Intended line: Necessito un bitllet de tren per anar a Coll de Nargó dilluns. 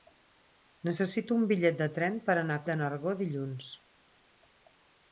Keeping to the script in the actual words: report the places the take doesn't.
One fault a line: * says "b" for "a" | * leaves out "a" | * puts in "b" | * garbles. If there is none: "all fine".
* leaves out "Coll"